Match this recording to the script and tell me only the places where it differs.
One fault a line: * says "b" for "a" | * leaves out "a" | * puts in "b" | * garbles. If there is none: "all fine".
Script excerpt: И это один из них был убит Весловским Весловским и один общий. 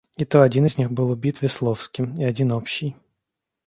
* says "то" for "это"
* leaves out "Весловским"